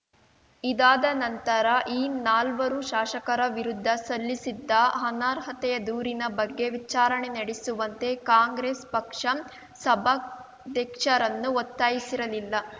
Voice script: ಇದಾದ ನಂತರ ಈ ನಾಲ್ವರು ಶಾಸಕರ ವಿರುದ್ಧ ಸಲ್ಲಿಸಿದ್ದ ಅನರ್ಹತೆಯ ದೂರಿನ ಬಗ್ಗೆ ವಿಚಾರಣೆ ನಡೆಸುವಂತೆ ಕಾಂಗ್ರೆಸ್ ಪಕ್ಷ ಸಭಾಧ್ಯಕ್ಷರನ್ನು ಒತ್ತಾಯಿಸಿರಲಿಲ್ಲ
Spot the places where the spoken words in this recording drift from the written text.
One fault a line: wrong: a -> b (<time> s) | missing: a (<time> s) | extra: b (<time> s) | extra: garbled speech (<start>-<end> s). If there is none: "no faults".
no faults